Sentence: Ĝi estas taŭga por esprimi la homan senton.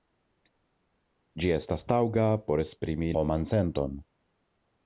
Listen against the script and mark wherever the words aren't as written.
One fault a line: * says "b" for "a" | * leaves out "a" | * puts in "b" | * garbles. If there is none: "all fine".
* leaves out "la"